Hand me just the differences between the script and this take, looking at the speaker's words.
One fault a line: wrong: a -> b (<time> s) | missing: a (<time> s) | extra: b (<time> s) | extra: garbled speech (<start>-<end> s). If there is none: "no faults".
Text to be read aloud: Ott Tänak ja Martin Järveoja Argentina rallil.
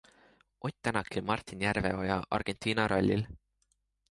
no faults